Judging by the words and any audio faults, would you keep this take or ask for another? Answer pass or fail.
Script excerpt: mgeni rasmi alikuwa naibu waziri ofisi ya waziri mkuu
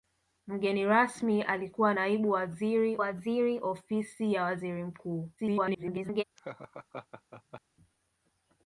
fail